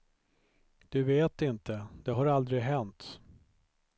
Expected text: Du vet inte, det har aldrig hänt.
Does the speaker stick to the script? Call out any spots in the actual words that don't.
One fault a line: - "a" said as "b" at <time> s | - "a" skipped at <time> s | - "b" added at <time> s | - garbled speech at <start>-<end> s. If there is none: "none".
none